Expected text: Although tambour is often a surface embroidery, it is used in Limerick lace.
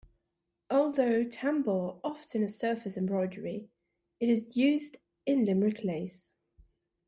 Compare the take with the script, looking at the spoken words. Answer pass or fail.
fail